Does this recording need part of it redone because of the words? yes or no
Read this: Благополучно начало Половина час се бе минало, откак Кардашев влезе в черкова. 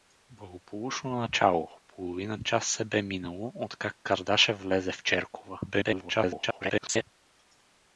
yes